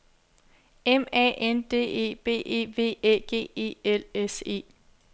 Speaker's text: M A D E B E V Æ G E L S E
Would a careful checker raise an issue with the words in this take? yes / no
yes